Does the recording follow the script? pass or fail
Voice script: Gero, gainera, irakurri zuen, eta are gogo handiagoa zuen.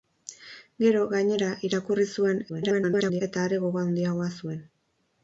fail